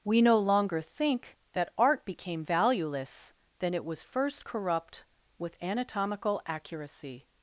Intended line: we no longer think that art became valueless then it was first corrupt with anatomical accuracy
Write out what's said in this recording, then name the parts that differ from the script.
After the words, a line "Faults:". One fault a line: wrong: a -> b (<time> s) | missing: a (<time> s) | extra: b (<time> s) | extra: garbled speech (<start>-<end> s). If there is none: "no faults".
we no longer think that art became valueless then it was first corrupt with anatomical accuracy
Faults:
no faults